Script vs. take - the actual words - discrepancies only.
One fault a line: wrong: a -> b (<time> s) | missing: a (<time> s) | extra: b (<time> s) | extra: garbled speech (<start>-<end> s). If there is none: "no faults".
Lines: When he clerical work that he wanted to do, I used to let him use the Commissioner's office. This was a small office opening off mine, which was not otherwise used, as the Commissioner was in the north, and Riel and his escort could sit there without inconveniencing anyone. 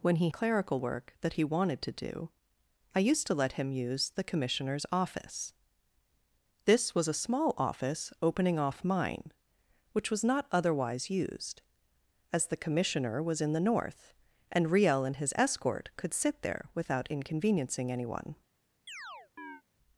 no faults